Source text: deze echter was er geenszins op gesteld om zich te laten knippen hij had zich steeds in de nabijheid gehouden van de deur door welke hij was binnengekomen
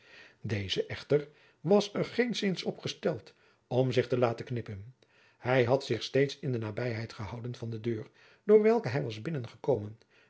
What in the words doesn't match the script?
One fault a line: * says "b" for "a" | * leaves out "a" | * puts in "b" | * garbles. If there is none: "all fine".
all fine